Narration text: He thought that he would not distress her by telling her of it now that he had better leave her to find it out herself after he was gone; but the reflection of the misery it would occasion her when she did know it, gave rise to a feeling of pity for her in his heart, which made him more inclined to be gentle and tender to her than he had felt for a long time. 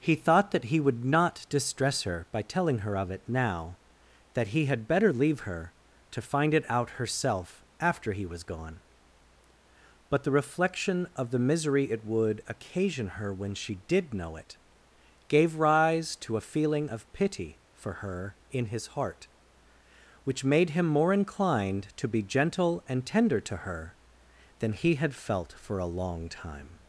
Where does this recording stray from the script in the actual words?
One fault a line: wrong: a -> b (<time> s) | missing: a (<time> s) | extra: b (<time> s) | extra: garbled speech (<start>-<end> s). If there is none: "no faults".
no faults